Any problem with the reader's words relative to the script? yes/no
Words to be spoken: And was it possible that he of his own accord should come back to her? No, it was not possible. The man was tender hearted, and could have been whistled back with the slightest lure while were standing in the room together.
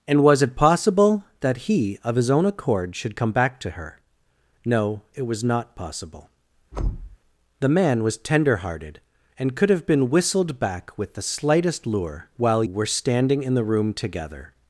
no